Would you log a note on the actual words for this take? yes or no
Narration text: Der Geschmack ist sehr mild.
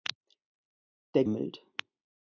yes